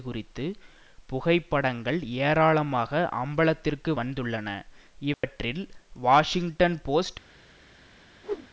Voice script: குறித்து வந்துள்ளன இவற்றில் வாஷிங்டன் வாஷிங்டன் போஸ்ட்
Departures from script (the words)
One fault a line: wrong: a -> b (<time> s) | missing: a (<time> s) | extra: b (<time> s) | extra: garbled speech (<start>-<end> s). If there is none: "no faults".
extra: புகைப்படங்கள் ஏராளமாக அம்பலத்திற்கு (1.1 s)
missing: வாஷிங்டன் (6.8 s)